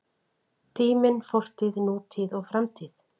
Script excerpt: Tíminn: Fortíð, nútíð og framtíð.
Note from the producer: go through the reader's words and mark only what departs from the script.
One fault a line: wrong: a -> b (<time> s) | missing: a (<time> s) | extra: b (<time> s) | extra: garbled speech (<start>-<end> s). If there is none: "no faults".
no faults